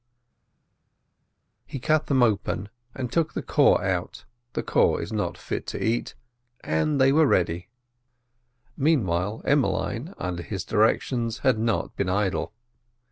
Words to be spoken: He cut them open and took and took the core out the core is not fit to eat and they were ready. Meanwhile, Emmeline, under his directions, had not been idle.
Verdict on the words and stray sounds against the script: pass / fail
fail